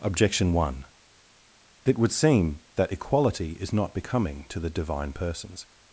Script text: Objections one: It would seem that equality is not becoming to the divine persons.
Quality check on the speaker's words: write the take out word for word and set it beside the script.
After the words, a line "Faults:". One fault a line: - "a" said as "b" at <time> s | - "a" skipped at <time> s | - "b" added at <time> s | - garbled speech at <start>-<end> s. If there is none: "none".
Objection one: It would seem that equality is not becoming to the divine persons.
Faults:
- "Objections" said as "Objection" at 0.0 s